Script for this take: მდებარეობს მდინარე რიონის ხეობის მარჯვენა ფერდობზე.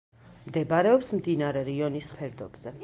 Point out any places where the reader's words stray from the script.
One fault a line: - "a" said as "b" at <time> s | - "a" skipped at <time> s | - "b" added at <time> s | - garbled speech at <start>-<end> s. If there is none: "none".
- "ხეობის მარჯვენა" skipped at 2.1 s